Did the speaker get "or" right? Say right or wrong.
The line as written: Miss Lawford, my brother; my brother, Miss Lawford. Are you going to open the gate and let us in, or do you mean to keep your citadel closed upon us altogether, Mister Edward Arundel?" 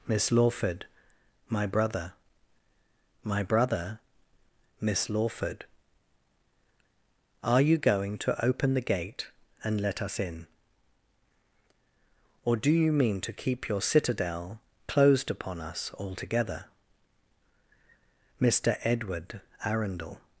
right